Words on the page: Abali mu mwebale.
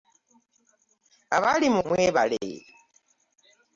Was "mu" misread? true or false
false